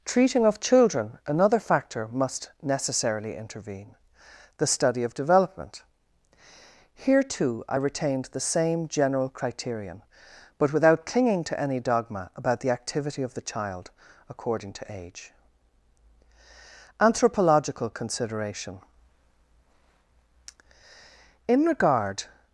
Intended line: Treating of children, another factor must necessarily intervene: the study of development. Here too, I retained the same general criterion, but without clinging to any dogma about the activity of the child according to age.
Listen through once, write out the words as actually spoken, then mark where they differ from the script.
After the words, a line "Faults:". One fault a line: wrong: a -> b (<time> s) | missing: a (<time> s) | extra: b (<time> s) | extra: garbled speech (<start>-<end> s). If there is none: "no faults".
Treating of children, another factor must necessarily intervene: the study of development. Here too, I retained the same general criterion, but without clinging to any dogma about the activity of the child according to age. ANTHROPOLOGICAL CONSIDERATION In regard
Faults:
extra: ANTHROPOLOGICAL CONSIDERATION In regard (17.0 s)